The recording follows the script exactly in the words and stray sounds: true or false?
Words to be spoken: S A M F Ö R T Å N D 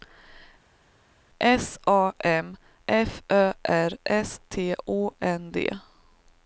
false